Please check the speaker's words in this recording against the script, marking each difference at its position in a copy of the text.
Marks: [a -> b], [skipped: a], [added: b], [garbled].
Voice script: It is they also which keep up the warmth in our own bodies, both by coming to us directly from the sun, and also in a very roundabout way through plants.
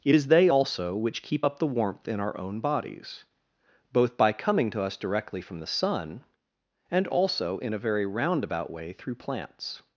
It is they also which keep up the warmth in our own bodies, both by coming to us directly from the sun, and also in a very roundabout way through plants.